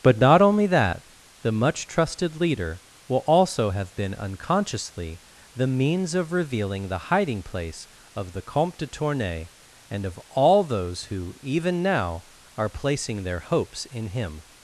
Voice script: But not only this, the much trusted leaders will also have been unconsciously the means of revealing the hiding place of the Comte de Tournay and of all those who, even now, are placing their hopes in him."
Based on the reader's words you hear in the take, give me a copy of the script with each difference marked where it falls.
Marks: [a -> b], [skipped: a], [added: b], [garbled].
But not only [this, -> that] the much trusted [leaders -> leader] will also have been unconsciously the means of revealing the hiding place of the Comte de Tournay and of all those who, even now, are placing their hopes in him."